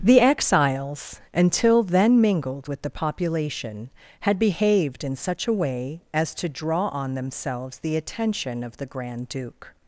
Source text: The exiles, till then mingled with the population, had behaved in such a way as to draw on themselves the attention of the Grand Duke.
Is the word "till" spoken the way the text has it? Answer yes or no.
no